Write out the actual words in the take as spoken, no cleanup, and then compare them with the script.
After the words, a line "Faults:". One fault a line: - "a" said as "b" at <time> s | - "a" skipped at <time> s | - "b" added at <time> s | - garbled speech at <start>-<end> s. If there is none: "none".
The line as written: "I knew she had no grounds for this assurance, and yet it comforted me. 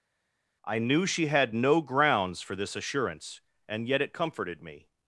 "I knew she had no grounds for this assurance, and yet it comforted me.
Faults:
none